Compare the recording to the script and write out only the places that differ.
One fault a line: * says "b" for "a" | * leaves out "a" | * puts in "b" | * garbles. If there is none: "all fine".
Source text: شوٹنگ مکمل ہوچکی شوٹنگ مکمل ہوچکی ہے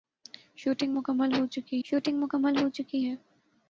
all fine